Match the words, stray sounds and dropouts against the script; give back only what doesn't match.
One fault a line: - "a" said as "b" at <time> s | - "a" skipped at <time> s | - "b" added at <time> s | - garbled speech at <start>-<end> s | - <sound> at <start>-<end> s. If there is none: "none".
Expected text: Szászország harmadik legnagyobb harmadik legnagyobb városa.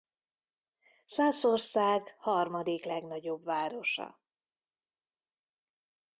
- "harmadik legnagyobb" skipped at 3.4 s